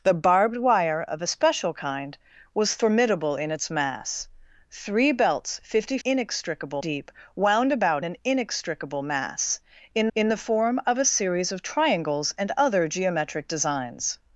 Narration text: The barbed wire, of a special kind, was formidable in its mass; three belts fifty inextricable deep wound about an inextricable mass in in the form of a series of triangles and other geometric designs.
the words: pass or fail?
pass